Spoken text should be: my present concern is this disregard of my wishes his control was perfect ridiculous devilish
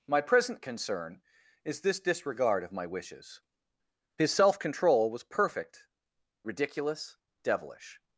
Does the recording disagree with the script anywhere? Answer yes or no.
yes